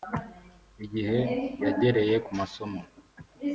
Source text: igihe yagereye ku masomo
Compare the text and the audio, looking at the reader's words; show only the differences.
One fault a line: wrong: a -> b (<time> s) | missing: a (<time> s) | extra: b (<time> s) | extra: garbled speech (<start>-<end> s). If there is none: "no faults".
no faults